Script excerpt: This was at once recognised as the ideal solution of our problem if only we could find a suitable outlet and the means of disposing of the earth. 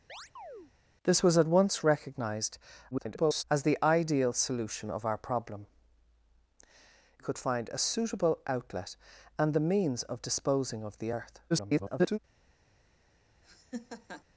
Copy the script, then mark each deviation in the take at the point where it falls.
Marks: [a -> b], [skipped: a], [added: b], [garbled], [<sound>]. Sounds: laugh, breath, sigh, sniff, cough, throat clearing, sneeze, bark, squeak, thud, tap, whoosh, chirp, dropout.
[chirp] This was at once recognised [garbled] as the ideal solution of our problem [skipped: if only we] could find a suitable outlet and the means of disposing of the earth. [garbled] [laugh]